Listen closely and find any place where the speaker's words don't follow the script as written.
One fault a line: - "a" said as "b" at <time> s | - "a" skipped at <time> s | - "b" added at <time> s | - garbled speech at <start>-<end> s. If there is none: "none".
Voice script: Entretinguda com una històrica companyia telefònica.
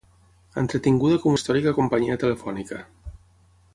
- "una" skipped at 1.4 s